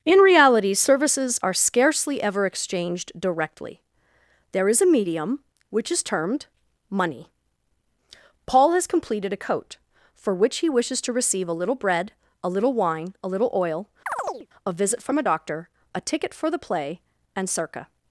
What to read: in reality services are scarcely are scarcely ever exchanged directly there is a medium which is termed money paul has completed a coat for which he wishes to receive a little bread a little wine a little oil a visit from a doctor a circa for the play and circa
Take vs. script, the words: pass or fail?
fail